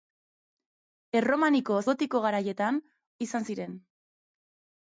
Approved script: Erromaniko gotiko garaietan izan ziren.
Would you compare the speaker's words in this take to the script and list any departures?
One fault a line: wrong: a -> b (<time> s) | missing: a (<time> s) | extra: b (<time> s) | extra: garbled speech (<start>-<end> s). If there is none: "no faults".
no faults